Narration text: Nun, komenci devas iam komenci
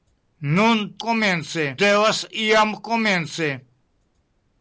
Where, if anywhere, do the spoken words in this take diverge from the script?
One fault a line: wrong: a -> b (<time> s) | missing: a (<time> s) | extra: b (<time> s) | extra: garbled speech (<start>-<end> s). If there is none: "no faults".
no faults